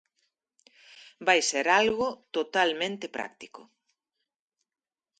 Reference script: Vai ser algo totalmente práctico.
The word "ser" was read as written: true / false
true